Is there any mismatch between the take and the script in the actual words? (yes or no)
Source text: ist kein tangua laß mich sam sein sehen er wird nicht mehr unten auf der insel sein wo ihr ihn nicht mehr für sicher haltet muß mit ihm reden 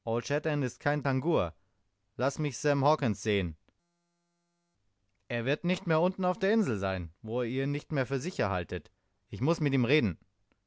yes